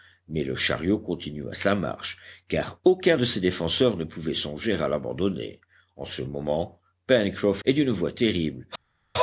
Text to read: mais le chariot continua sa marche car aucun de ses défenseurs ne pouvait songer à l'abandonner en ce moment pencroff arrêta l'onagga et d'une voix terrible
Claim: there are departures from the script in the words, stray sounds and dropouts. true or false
true